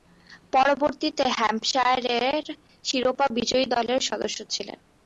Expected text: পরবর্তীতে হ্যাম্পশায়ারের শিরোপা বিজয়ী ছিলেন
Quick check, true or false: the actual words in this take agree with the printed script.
false